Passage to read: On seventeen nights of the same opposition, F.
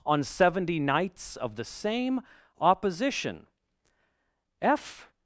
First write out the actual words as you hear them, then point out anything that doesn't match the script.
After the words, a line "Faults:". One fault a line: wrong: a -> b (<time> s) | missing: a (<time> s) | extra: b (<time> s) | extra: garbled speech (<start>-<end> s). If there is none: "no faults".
On seventy nights of the same opposition, F.
Faults:
wrong: seventeen -> seventy (0.2 s)